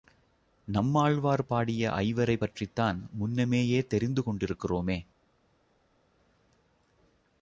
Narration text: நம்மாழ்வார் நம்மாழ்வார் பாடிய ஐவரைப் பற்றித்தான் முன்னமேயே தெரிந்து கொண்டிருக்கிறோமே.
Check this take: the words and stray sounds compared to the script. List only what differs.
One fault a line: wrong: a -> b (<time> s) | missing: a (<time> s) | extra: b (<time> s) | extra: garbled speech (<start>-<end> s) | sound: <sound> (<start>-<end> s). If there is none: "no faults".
missing: நம்மாழ்வார் (1.5 s)